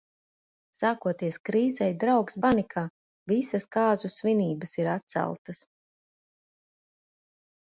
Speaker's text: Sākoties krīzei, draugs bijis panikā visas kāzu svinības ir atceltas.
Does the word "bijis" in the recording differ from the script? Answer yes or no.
yes